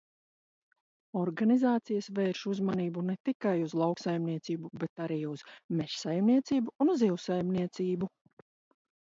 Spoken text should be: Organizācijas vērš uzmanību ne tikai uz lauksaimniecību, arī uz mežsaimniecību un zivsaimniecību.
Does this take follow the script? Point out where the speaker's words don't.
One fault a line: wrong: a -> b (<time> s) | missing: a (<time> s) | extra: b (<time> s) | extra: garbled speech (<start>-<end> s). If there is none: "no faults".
extra: bet (4.8 s)